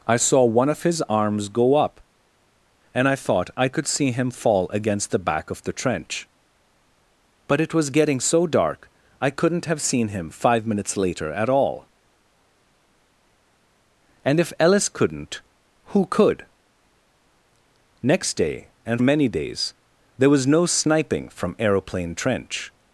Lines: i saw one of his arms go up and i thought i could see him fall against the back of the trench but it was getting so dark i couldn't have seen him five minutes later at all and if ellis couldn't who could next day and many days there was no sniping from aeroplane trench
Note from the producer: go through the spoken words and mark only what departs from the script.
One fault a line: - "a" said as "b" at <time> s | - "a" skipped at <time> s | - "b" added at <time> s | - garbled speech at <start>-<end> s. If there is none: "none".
none